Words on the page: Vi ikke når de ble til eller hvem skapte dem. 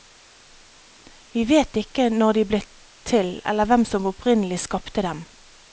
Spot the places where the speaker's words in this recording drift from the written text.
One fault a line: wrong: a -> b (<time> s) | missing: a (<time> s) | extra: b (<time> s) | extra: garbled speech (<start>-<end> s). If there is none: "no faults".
extra: vet (1.5 s)
extra: som opprinnelig (3.8 s)